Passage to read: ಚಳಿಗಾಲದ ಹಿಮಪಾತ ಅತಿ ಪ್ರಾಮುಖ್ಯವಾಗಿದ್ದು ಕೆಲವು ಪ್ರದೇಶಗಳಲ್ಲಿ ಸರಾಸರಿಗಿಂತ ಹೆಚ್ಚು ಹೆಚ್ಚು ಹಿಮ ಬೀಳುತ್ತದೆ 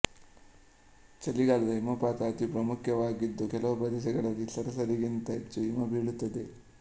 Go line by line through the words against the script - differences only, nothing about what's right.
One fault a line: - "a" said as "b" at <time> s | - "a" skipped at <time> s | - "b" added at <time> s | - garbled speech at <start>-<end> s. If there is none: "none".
- "ಹೆಚ್ಚು" skipped at 5.6 s